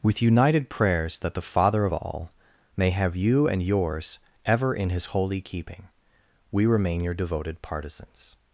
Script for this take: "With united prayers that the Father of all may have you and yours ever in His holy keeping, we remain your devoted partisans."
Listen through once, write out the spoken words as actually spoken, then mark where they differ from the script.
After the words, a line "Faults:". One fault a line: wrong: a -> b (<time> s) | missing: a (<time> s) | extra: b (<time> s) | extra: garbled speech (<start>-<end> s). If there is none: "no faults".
"With united prayers that the Father of all may have you and yours ever in His holy keeping, we remain your devoted partisans."
Faults:
no faults